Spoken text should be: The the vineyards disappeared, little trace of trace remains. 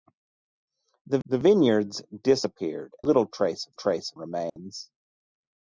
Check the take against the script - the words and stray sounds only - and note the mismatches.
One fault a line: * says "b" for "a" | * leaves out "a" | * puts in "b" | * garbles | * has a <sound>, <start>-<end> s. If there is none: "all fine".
* has a dropout, 4.5-4.6 s